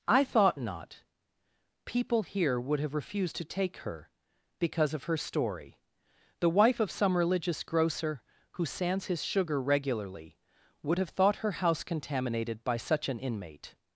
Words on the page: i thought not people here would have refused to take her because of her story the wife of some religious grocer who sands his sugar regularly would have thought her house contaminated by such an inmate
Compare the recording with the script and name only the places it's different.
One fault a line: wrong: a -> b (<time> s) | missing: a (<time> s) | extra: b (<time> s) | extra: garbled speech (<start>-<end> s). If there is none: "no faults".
no faults